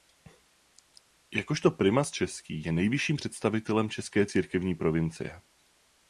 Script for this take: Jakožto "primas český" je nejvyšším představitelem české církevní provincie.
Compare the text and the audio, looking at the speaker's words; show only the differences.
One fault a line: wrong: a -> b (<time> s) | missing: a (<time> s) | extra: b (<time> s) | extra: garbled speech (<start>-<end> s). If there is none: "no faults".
no faults